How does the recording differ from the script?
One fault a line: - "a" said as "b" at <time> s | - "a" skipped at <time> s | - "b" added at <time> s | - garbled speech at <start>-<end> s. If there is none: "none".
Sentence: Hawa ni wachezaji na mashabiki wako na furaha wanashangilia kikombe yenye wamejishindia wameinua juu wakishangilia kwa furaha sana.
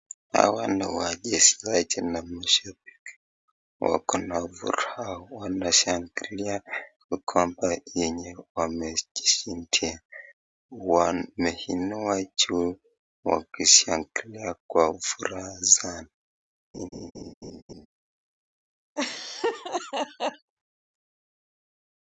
none